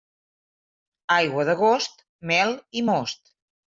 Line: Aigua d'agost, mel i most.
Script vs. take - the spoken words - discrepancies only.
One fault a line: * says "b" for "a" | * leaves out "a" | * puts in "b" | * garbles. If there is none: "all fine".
all fine